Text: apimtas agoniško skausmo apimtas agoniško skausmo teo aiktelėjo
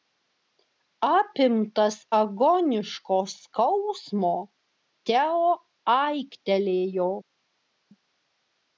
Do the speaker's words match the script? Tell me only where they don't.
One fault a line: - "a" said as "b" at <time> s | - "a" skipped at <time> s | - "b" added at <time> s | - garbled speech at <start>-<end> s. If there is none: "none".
- "apimtas agoniško skausmo" skipped at 4.3 s